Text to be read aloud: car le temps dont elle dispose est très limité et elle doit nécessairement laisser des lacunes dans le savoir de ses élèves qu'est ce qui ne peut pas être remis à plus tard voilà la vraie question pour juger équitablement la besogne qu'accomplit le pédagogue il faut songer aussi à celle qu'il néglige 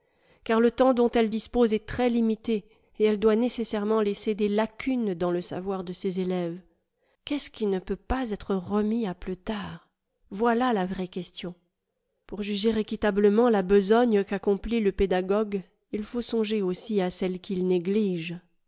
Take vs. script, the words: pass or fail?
pass